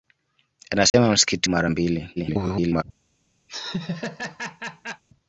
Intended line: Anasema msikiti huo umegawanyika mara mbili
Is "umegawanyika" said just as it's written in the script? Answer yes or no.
no